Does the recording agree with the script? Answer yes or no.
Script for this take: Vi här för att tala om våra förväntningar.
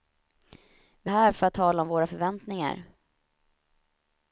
yes